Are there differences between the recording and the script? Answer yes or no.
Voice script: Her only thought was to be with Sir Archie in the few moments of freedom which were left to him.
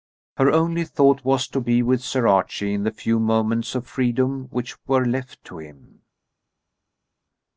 no